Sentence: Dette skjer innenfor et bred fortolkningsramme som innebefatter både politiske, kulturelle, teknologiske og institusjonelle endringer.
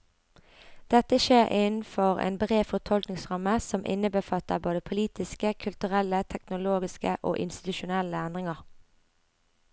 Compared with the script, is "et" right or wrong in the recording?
wrong